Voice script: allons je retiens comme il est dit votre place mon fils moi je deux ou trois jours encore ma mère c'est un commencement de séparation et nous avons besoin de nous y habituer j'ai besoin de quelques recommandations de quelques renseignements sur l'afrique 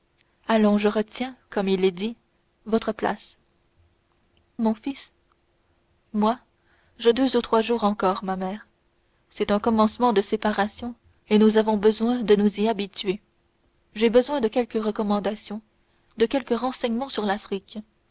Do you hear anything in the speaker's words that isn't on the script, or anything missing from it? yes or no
no